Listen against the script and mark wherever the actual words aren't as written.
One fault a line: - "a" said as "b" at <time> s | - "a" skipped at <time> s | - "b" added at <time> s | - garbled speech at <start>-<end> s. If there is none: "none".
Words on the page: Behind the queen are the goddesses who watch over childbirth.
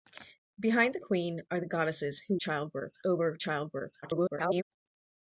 - "watch" said as "childbirth" at 2.4 s
- garbled speech at 4.0-4.6 s